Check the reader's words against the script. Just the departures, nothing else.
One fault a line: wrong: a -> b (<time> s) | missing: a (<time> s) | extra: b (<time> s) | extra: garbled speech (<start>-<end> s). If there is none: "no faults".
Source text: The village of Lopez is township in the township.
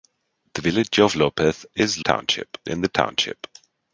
no faults